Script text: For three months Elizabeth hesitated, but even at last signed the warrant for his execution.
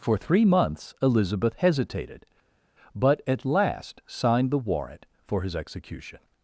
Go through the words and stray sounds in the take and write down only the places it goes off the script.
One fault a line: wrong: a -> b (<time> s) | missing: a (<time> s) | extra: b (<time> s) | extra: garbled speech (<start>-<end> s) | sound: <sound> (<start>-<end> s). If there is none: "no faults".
missing: even (3.2 s)